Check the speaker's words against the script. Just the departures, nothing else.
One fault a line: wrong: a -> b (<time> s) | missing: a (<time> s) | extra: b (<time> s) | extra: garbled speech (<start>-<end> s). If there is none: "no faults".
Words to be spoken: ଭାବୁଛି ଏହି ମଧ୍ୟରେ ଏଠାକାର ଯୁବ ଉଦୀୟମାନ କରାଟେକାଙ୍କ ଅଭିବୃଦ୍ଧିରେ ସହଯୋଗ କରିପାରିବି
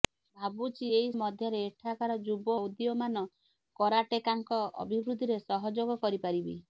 no faults